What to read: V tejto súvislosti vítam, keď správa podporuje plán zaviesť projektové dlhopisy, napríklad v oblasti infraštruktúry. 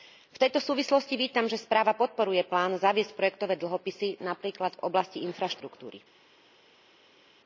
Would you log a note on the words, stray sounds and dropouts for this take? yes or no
yes